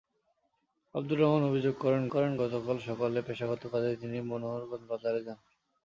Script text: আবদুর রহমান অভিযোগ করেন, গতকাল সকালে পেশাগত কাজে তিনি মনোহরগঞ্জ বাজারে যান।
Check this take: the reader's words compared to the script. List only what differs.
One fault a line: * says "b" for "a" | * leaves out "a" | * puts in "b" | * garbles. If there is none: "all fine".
* puts in "করেন"